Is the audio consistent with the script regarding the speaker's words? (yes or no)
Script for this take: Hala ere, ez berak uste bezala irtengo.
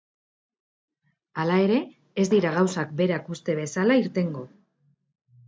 no